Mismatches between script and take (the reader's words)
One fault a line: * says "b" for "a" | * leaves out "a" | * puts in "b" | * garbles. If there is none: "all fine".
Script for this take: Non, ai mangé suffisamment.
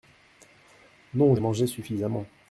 all fine